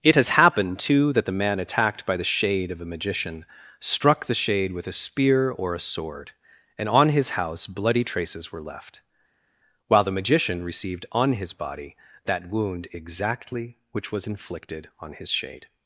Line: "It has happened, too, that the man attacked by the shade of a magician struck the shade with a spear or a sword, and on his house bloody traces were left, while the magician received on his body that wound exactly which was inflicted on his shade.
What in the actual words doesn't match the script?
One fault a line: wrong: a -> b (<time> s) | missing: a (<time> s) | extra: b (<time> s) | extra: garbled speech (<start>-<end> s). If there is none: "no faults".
no faults